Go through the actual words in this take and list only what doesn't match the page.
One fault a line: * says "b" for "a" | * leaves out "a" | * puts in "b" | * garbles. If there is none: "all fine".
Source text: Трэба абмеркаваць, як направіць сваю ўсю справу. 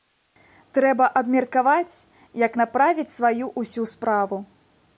all fine